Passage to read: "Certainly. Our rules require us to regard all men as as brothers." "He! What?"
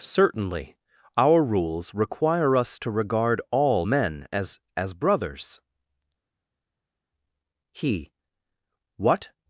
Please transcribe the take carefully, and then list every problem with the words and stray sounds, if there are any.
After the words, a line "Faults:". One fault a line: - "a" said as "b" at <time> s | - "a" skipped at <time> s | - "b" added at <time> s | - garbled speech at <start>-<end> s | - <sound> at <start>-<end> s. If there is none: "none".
"Certainly. Our rules require us to regard all men as as brothers." "He! What?"
Faults:
none